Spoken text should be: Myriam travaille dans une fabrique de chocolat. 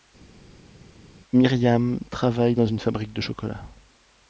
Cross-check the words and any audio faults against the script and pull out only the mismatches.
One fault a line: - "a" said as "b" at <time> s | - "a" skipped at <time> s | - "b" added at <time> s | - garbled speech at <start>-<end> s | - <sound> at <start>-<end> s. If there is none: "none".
none